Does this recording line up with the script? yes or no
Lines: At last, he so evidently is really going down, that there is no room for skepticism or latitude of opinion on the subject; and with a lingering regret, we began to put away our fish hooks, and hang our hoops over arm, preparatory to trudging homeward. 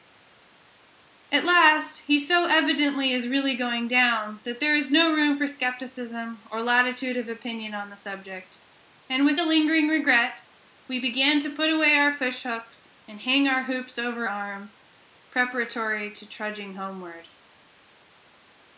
yes